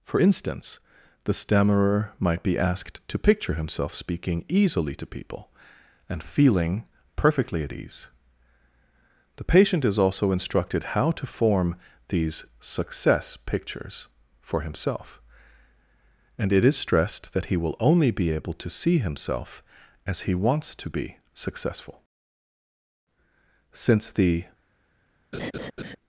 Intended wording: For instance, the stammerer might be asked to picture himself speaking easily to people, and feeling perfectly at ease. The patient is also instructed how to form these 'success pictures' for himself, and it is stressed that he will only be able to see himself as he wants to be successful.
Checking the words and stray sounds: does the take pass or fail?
fail